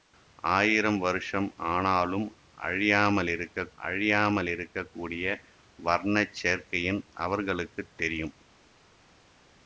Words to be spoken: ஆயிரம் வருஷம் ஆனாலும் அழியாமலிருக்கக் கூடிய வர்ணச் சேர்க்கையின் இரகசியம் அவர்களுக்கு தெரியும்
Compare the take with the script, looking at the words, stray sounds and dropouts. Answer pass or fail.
fail